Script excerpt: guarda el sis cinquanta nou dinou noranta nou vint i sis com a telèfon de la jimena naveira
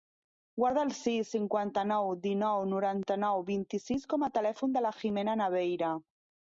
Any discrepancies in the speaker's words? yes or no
no